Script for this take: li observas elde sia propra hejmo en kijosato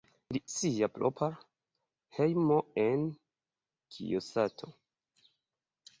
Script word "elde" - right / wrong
wrong